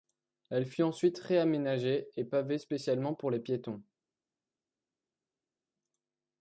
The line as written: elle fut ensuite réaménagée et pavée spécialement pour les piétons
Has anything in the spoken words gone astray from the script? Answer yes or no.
no